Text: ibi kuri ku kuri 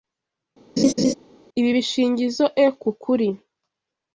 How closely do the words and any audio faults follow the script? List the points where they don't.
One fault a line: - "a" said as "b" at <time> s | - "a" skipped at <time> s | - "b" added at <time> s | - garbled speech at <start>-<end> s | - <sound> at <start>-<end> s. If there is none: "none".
- laugh at 0.8-1.1 s
- "kuri" said as "bishingizoe" at 1.8 s